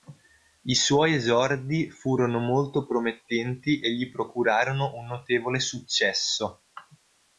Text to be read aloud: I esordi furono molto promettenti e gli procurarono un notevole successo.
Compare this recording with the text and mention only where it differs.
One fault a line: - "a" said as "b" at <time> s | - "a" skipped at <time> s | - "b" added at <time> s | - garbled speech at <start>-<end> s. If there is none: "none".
- "suoi" added at 0.7 s